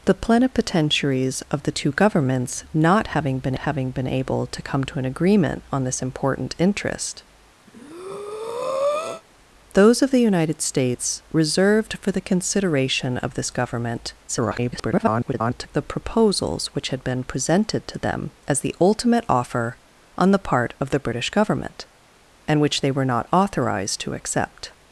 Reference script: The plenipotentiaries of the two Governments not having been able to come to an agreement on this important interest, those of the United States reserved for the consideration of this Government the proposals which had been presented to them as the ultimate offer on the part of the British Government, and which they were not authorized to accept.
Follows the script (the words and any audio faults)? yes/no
no